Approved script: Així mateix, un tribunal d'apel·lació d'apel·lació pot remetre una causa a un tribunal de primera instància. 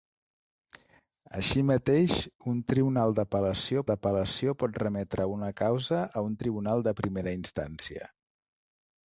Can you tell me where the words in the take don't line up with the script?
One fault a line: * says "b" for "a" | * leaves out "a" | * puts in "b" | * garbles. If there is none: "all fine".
all fine